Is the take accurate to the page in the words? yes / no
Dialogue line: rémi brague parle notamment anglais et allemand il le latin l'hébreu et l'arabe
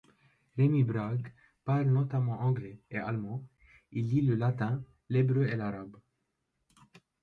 no